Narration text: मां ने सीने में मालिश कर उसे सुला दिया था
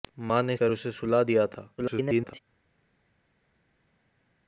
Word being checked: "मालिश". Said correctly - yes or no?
no